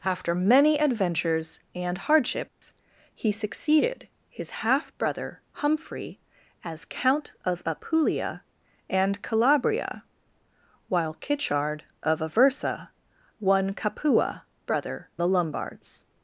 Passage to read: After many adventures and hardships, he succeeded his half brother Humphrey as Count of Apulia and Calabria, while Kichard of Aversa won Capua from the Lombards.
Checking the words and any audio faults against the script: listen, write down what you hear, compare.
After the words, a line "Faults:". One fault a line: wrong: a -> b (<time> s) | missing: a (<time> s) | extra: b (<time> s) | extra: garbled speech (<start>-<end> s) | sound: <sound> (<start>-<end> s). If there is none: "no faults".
After many adventures and hardships, he succeeded his half brother Humphrey as Count of Apulia and Calabria, while Kichard of Aversa won Capua brother the Lombards.
Faults:
sound: dropout (2.5-2.6 s)
wrong: from -> brother (14.7 s)